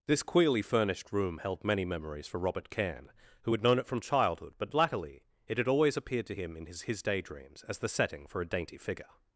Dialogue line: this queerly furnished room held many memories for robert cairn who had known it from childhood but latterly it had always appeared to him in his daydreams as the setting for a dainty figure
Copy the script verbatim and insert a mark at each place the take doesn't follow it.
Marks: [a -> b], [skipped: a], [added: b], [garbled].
this queerly furnished room held many memories for robert cairn who had known it from childhood but latterly it had always appeared to him in his [added: his] daydreams as the setting for a dainty figure